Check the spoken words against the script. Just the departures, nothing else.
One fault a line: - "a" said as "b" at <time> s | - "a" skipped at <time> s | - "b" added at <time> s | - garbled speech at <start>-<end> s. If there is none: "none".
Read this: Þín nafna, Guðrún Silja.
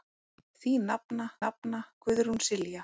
- "nafna" added at 1.5 s